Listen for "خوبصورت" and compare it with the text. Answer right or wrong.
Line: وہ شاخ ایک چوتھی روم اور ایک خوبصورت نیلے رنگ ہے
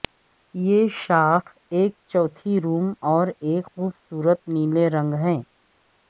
right